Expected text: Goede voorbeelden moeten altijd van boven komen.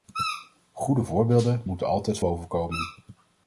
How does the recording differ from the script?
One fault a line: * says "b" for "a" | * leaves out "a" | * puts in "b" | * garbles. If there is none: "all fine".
* leaves out "van"